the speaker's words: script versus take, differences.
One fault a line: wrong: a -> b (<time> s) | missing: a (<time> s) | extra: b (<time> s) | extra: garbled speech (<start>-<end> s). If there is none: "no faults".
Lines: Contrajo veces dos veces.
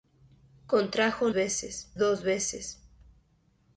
no faults